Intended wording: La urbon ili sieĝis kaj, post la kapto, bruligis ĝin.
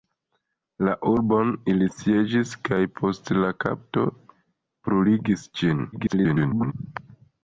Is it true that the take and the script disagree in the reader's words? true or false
true